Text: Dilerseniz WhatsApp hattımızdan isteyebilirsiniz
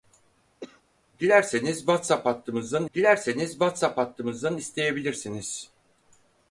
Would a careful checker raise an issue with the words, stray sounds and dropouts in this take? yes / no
yes